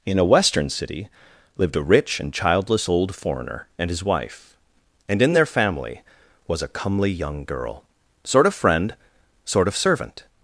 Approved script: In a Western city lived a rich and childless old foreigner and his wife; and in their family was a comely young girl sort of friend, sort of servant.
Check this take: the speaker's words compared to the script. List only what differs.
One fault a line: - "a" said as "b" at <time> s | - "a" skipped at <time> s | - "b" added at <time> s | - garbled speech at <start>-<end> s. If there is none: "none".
none